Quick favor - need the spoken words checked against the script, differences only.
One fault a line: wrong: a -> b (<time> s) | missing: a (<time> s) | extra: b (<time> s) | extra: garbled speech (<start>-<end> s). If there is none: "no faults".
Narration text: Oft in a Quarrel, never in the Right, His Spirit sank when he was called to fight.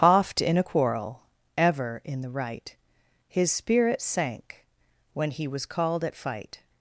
wrong: never -> ever (1.6 s)
wrong: to -> at (6.0 s)